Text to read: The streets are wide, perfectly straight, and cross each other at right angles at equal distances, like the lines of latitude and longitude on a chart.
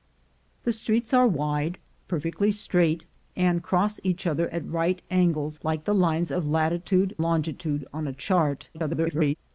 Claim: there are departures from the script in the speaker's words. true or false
true